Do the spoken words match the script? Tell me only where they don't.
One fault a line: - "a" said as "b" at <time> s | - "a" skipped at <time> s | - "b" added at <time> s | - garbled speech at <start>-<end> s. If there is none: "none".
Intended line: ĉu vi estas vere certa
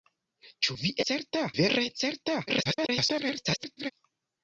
- "estas" said as "certa" at 1.1 s
- garbled speech at 2.5-3.9 s